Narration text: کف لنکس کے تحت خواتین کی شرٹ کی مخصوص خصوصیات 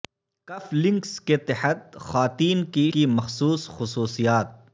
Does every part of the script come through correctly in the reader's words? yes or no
no